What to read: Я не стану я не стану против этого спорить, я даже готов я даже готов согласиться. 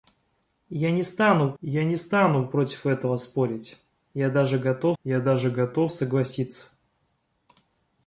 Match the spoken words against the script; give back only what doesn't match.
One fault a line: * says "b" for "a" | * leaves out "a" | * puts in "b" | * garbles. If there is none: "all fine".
all fine